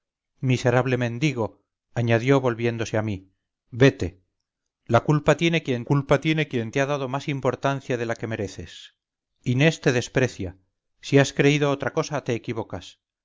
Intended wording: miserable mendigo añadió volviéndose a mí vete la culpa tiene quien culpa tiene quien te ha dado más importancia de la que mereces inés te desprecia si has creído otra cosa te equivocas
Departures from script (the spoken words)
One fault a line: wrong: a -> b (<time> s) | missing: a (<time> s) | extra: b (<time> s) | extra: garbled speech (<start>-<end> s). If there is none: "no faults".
no faults